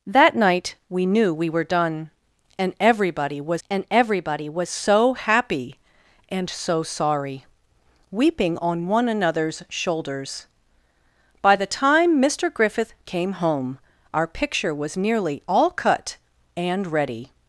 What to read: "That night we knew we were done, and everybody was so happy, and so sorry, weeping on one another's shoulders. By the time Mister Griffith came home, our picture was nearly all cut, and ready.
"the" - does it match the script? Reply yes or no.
yes